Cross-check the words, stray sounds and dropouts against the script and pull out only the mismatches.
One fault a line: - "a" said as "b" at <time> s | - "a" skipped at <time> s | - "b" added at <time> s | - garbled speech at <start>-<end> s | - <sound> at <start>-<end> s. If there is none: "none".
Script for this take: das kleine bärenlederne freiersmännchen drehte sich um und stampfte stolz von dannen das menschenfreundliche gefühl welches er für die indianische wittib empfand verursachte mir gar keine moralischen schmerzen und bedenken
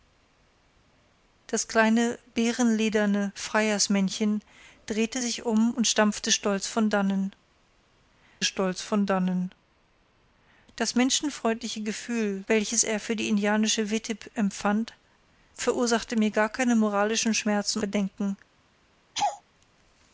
- "stolz von dannen" added at 8.4 s
- "und" skipped at 17.8 s
- laugh at 19.1-19.4 s